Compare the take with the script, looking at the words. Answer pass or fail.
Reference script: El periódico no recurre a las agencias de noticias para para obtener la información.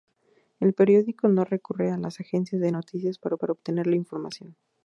pass